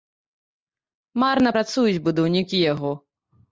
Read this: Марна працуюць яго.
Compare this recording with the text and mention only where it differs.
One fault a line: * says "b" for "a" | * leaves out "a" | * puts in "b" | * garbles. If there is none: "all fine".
* puts in "будаўнікі"